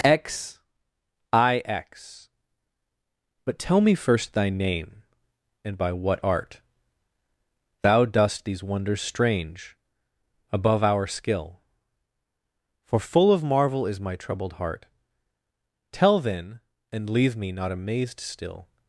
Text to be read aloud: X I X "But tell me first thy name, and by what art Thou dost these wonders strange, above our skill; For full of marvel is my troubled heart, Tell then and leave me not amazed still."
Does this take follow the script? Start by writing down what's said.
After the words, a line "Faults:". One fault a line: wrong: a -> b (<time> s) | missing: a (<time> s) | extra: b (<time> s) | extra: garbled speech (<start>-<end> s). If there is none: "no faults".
X I X "But tell me first thy name, and by what art Thou dost these wonders strange, above our skill; For full of marvel is my troubled heart, Tell then and leave me not amazed still."
Faults:
no faults